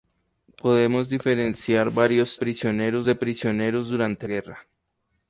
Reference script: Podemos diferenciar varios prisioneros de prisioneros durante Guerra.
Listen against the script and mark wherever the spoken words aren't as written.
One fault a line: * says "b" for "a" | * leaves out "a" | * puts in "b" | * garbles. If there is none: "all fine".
all fine